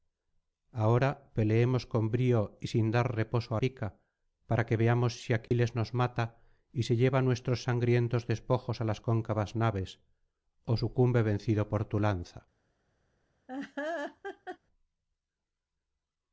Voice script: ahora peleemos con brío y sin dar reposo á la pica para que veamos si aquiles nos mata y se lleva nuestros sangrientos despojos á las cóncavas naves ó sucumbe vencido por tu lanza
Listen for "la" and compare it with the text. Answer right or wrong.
wrong